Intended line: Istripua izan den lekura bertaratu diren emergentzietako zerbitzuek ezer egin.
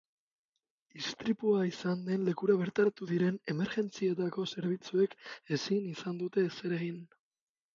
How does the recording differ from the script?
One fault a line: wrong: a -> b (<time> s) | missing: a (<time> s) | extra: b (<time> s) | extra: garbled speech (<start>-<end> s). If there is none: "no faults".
extra: ezin izan dute (5.6 s)